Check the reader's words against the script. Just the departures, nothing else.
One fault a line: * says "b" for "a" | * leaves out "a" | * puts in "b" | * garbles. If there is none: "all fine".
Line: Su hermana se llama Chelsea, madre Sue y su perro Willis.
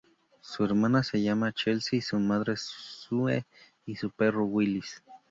* puts in "su"